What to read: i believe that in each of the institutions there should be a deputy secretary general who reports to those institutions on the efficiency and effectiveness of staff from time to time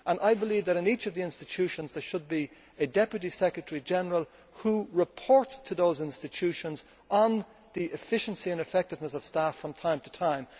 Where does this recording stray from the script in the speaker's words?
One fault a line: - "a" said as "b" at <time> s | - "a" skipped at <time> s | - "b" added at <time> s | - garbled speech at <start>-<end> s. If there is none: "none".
none